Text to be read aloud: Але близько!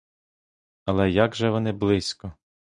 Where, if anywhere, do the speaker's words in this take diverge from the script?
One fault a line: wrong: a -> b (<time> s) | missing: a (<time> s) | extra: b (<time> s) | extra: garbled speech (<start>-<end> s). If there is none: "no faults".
extra: як же вони (1.1 s)